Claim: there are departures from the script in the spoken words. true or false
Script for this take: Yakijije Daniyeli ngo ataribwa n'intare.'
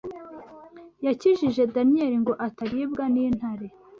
false